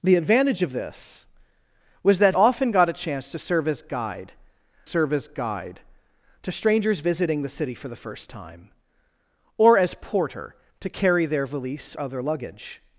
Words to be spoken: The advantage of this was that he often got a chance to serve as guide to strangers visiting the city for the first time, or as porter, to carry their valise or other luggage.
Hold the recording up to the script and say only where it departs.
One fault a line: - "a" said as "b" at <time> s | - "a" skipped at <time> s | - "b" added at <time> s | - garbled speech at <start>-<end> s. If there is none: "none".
- "he" skipped at 2.4 s
- "serve as guide" added at 4.8 s
- "or" skipped at 11.9 s